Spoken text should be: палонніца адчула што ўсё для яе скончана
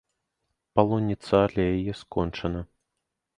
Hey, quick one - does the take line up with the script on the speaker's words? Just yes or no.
no